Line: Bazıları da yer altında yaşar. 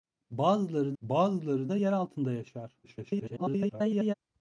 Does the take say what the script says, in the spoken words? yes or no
no